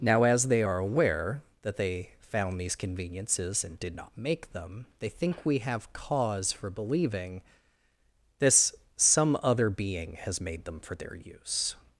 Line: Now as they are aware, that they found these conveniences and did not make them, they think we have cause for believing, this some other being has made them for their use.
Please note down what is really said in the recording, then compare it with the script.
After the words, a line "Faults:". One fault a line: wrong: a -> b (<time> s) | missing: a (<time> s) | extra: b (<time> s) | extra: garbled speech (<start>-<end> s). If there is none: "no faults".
Now as they are aware, that they found these conveniences and did not make them, they think we have cause for believing, this some other being has made them for their use.
Faults:
no faults